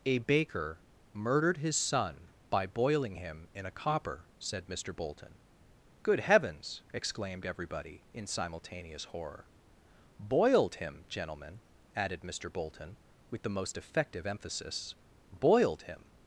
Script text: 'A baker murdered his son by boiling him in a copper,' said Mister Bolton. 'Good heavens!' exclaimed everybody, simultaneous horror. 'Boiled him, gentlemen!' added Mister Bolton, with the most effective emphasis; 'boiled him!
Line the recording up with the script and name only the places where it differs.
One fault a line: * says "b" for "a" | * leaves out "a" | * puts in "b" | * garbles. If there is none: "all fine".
* puts in "in"